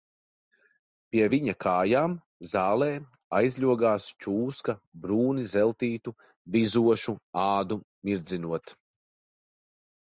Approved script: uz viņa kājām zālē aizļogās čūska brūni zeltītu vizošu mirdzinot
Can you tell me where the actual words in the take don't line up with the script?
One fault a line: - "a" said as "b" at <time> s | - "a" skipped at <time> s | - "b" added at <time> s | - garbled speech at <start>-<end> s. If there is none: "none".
- "uz" said as "pie" at 1.1 s
- "ādu" added at 7.5 s